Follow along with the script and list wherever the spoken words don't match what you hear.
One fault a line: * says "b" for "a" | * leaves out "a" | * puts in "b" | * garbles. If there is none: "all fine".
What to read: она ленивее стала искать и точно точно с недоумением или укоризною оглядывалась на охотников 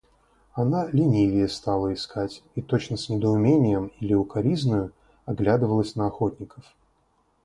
* leaves out "точно"